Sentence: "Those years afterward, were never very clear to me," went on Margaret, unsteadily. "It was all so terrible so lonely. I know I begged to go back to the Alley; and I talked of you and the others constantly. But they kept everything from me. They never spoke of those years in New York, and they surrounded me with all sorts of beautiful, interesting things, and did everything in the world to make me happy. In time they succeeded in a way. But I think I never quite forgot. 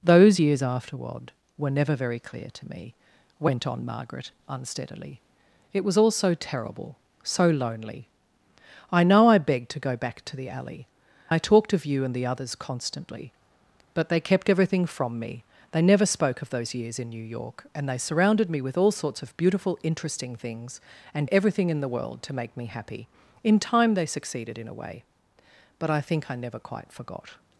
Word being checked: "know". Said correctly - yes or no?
yes